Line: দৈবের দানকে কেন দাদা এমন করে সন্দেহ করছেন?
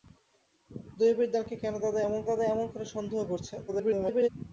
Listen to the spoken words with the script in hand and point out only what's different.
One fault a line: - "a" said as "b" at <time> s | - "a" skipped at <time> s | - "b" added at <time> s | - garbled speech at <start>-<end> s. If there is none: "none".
- "দাদা এমন" added at 2.3 s
- garbled speech at 3.7-4.3 s